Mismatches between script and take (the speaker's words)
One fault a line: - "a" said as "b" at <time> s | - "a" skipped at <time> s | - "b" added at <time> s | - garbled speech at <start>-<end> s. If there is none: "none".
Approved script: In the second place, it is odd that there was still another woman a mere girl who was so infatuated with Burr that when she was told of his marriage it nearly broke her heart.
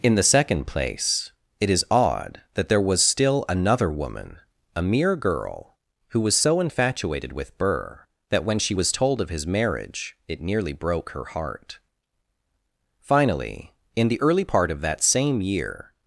- "Finally in the early part of that same year" added at 13.0 s